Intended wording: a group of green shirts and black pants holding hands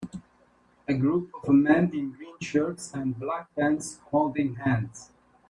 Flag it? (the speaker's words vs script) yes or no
yes